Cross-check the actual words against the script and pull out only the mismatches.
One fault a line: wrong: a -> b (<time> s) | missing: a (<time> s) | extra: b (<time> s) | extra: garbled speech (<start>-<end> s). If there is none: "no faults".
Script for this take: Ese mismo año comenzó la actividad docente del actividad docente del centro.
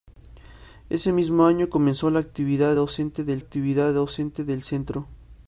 no faults